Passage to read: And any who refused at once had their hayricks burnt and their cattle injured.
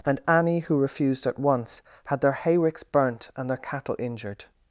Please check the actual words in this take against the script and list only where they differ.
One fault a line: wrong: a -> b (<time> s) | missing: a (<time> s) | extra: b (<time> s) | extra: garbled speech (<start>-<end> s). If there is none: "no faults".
no faults